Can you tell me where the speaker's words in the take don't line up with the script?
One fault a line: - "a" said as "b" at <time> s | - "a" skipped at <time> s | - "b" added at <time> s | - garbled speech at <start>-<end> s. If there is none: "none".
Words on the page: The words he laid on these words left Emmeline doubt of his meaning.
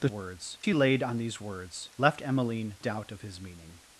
none